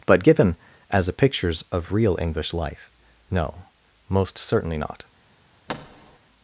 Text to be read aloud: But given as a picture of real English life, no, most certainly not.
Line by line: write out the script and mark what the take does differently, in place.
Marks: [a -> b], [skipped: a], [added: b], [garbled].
But given as a [picture -> pictures] of real English life, no, most certainly not.